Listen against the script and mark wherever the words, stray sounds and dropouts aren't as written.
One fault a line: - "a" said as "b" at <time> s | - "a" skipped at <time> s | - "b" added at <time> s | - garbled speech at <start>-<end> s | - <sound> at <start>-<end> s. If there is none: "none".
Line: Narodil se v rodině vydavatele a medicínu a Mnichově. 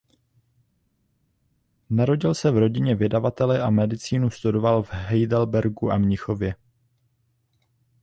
- "studoval v Heidelbergu" added at 4.3 s